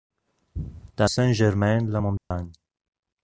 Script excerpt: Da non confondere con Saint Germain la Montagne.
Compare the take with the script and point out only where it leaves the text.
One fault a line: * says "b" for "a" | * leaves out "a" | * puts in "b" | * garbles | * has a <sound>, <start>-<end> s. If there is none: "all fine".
* leaves out "non confondere con"
* has a dropout, 2.2-2.3 s